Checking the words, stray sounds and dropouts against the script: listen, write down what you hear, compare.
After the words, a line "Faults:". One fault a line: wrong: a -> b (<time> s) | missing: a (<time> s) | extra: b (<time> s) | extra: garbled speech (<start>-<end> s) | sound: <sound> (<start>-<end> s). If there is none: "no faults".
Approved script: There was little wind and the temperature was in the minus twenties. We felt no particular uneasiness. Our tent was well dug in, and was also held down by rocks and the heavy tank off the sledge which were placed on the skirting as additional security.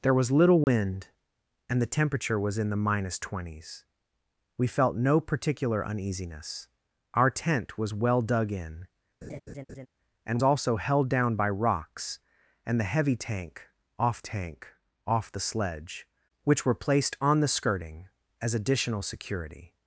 There was little wind and the temperature was in the minus twenties. We felt no particular uneasiness. Our tent was well dug in, and also held down by rocks and the heavy tank off tank off the sledge which were placed on the skirting as additional security.
Faults:
sound: dropout (0.6-0.7 s)
sound: laugh (9.2-9.9 s)
missing: was (10.4 s)
extra: tank off (14.2 s)